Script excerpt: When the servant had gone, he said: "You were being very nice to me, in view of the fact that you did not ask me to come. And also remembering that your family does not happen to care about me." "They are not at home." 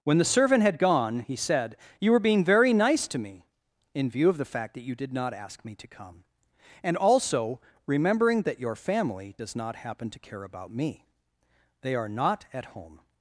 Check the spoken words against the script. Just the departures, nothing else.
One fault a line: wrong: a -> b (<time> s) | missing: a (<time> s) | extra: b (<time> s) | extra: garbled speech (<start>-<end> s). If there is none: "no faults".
no faults